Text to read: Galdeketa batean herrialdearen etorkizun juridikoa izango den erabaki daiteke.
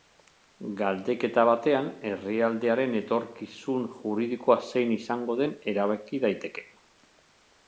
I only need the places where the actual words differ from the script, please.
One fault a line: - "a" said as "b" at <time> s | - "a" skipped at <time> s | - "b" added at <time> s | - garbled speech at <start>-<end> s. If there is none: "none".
- "zein" added at 4.7 s